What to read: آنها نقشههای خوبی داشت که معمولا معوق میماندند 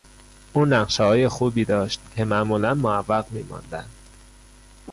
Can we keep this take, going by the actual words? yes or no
no